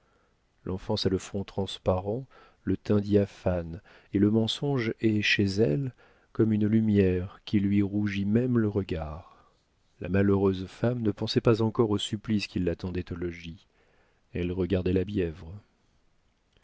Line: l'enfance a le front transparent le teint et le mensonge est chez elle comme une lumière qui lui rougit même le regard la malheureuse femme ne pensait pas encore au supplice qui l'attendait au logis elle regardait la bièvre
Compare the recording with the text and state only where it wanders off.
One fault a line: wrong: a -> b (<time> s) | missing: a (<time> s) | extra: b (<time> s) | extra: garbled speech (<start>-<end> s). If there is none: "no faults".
extra: diaphane (3.0 s)